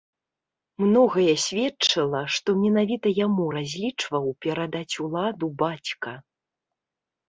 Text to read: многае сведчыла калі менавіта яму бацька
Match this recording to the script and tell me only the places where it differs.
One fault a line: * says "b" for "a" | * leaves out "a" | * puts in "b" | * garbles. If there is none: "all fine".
* says "што" for "калі"
* puts in "разлічваў перадаць уладу"